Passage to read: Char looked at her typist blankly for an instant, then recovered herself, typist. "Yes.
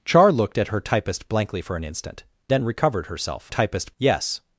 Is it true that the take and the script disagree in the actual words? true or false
false